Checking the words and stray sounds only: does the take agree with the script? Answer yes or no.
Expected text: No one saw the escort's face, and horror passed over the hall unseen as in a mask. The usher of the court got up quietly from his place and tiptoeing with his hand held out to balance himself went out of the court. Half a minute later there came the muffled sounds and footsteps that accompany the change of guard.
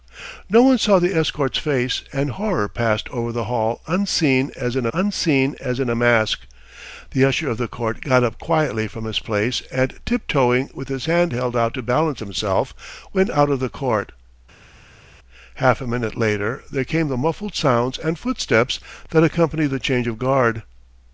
no